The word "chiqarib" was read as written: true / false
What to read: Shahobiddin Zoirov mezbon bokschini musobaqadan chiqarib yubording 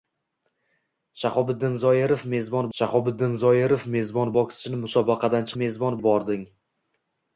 false